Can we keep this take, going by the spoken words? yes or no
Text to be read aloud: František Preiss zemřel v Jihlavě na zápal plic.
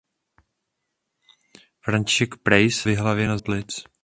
no